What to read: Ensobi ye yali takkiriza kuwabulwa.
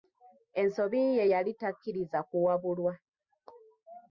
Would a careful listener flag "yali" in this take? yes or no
no